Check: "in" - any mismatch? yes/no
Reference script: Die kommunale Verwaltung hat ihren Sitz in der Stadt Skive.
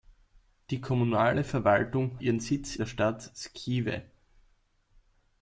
yes